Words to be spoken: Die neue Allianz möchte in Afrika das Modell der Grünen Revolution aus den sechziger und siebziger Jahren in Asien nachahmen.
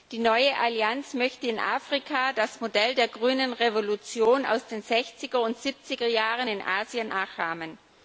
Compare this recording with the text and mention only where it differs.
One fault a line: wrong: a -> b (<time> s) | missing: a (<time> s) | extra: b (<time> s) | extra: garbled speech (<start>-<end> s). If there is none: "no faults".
no faults